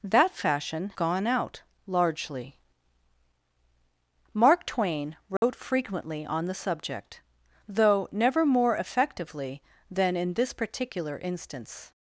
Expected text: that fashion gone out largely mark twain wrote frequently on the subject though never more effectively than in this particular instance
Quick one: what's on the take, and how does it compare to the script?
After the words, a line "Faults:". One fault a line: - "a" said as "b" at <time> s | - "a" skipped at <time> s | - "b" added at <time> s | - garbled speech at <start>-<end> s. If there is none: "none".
that fashion gone out largely mark twain wrote frequently on the subject though never more effectively than in this particular instance
Faults:
none